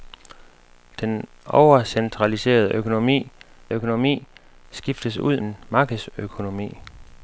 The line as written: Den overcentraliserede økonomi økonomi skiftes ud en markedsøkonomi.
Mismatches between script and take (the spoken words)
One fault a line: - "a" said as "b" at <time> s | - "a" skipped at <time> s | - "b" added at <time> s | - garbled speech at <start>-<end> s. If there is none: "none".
none